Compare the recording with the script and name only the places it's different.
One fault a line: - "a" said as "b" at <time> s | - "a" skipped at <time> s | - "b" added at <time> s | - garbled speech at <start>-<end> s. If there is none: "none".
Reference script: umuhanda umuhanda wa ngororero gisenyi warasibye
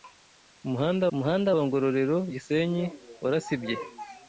none